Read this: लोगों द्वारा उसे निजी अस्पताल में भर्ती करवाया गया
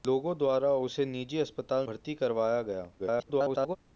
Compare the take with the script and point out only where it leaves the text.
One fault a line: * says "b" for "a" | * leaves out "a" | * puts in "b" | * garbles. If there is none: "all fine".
* leaves out "में"
* garbles